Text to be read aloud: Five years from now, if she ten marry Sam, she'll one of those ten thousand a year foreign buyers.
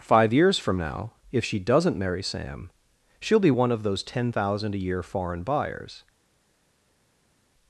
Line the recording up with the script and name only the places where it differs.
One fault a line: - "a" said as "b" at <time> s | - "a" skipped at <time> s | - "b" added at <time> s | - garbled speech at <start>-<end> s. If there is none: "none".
- "ten" said as "doesn't" at 1.6 s
- "be" added at 3.4 s